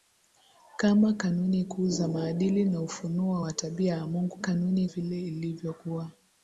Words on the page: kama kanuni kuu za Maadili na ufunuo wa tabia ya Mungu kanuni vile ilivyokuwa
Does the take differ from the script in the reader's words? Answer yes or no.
no